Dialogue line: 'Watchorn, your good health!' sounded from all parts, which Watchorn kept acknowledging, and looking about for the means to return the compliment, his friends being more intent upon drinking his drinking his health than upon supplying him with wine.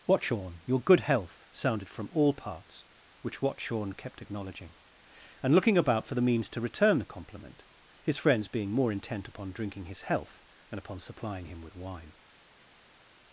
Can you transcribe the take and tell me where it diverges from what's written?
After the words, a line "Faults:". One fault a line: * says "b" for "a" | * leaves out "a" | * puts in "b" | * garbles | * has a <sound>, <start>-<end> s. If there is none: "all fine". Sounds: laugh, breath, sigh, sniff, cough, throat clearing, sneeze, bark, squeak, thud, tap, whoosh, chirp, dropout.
'Watchorn, your good health!' sounded from all parts, which Watchorn kept acknowledging, and looking about for the means to return the compliment, his friends being more intent upon drinking his health than upon supplying him with wine.
Faults:
* leaves out "drinking his"